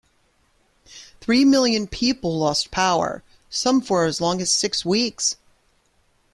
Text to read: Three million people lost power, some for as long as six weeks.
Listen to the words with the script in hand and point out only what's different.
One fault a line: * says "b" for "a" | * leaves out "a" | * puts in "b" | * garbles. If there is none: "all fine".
all fine